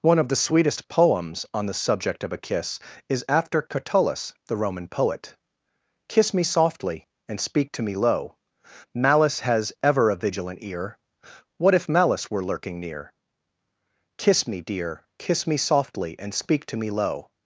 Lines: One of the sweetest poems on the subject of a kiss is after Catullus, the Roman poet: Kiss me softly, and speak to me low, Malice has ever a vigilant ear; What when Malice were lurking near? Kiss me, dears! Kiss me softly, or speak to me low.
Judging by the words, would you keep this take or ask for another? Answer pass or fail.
fail